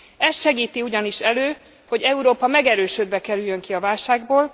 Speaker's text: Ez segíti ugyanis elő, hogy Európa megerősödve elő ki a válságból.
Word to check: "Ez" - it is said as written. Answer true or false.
true